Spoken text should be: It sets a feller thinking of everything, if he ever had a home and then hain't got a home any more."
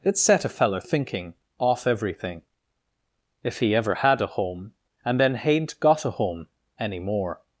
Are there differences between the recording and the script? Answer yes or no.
yes